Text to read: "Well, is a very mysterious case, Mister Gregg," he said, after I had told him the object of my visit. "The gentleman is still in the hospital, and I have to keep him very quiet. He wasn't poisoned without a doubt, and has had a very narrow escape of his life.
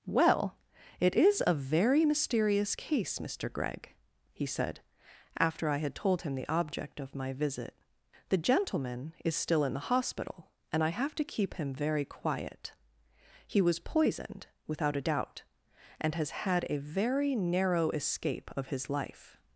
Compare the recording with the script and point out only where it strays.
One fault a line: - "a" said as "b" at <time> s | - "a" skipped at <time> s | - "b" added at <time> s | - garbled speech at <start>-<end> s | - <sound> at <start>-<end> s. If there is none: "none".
- "it" added at 1.0 s
- "wasn't" said as "was" at 13.6 s